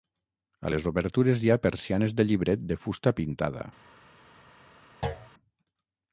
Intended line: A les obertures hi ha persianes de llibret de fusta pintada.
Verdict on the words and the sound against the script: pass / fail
fail